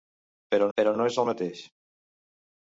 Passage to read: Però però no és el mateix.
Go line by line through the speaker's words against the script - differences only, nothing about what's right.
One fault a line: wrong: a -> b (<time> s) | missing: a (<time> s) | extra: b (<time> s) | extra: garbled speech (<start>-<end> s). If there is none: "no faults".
no faults